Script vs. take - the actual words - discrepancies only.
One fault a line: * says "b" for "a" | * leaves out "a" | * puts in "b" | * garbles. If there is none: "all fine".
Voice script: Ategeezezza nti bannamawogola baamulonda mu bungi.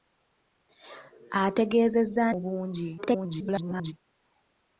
* leaves out "nti bannamawogola baamulonda"
* garbles